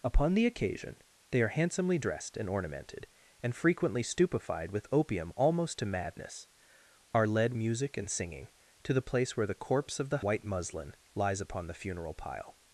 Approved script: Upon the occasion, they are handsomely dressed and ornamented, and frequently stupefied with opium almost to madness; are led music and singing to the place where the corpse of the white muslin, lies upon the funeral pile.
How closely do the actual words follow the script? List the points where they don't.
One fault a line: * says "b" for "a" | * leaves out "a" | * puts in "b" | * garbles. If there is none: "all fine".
all fine